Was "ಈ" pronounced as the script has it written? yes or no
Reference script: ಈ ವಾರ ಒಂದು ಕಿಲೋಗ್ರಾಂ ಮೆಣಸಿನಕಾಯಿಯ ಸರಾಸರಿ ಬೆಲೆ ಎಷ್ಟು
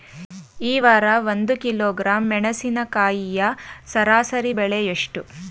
yes